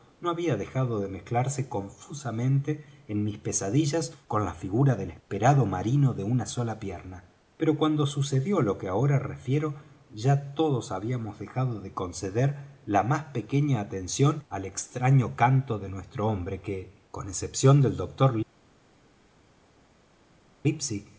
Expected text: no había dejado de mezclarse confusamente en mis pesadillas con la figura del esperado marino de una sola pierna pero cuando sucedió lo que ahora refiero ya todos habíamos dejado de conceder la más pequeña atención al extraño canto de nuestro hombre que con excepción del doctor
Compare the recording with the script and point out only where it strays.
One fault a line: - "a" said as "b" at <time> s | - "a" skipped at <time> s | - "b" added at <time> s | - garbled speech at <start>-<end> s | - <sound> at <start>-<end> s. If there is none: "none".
none